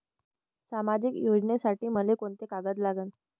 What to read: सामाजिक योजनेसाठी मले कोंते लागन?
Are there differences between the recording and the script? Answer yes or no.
yes